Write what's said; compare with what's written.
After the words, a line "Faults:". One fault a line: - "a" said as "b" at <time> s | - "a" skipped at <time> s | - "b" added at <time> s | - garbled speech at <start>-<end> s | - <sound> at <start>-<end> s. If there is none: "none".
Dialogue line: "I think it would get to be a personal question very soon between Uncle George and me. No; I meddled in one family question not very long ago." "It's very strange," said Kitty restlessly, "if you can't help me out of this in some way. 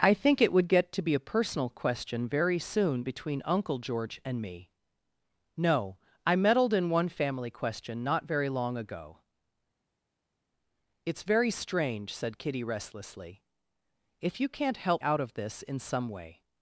"I think it would get to be a personal question very soon between Uncle George and me. No; I meddled in one family question not very long ago." "It's very strange," said Kitty restlessly, "if you can't help out of this in some way.
Faults:
- "me" skipped at 15.0 s